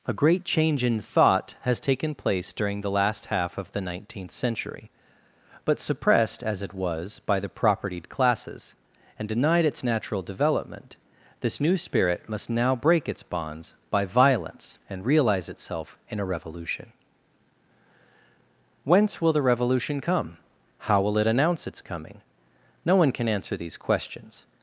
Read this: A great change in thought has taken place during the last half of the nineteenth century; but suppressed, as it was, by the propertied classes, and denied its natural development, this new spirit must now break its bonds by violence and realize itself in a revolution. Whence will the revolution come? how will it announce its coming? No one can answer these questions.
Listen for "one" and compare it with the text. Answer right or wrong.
right